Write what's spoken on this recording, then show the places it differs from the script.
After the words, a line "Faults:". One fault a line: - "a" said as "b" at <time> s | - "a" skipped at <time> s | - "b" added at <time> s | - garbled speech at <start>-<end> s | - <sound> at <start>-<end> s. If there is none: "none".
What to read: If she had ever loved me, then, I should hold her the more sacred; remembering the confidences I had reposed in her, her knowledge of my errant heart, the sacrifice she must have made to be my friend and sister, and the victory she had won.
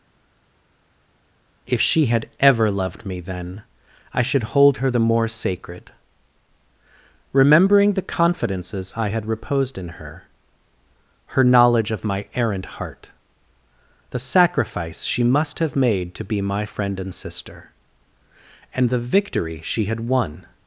If she had ever loved me, then, I should hold her the more sacred; remembering the confidences I had reposed in her, her knowledge of my errant heart, the sacrifice she must have made to be my friend and sister, and the victory she had won.
Faults:
none